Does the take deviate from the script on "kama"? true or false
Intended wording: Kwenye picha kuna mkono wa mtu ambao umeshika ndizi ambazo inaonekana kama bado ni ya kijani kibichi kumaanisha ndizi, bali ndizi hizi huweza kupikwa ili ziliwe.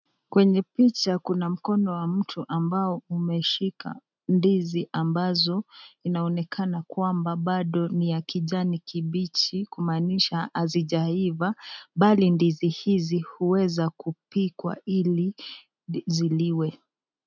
true